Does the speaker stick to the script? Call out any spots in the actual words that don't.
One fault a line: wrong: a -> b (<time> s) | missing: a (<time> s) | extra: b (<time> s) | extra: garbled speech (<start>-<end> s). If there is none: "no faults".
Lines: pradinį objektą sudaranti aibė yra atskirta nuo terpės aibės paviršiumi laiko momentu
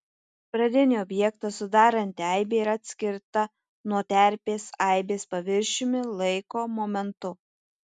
no faults